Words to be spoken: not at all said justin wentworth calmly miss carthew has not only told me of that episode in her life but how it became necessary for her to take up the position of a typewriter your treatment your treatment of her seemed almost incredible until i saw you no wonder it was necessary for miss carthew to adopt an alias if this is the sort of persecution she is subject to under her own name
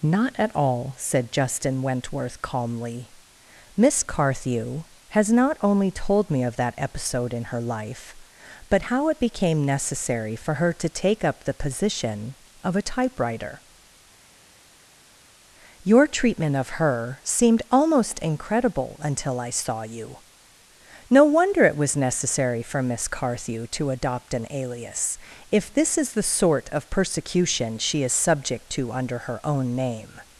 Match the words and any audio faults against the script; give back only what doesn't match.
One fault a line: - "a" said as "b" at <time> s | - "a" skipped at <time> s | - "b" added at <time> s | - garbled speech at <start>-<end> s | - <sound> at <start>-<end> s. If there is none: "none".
- "your treatment" skipped at 16.6 s